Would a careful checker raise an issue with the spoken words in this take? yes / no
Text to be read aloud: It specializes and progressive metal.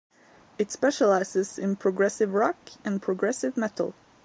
yes